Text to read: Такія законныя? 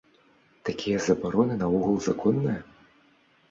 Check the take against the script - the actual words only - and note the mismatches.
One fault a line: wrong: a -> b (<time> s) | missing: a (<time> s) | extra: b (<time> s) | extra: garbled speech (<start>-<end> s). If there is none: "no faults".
extra: забароны наогул (1.1 s)